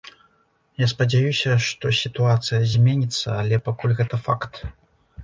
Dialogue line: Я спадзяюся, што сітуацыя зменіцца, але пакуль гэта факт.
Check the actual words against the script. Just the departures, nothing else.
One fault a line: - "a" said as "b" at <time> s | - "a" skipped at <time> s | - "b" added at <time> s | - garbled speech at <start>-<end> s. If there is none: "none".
none